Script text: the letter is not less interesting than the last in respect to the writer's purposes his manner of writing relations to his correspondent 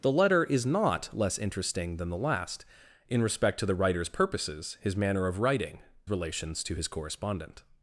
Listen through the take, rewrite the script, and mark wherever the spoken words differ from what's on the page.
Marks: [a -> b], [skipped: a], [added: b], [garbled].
the letter is not less interesting than the last in respect to the writer's purposes his manner of writing relations to his correspondent